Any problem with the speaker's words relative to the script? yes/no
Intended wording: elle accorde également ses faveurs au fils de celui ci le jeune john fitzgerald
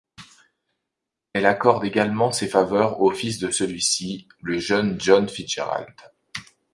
no